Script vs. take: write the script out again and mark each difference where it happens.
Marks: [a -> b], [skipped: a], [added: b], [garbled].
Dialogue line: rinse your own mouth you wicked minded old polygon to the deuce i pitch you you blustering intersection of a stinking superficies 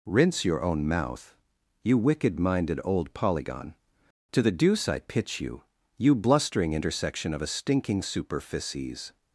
rinse your own mouth you wicked minded old polygon to the deuce i pitch you you blustering intersection of a stinking superficies